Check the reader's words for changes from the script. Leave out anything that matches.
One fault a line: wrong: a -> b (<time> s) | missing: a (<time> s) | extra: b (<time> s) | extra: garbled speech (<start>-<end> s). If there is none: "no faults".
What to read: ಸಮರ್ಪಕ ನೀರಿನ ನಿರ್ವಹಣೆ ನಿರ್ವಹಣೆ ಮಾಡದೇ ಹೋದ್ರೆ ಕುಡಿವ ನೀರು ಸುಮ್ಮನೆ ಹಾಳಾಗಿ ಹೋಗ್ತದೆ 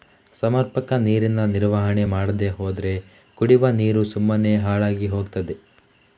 missing: ನಿರ್ವಹಣೆ (2.0 s)